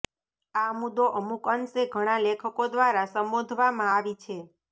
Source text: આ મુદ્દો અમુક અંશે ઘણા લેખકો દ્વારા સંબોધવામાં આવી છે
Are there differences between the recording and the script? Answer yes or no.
no